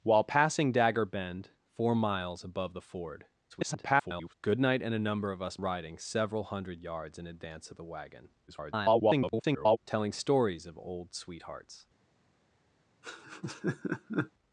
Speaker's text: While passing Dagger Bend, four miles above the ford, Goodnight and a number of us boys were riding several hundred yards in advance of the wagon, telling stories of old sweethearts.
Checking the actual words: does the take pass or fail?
fail